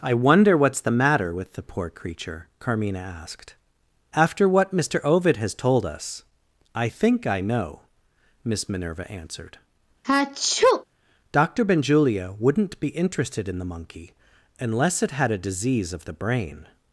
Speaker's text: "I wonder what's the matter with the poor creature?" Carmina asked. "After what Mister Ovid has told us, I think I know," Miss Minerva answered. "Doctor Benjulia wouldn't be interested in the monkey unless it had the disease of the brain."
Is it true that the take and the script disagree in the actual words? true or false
true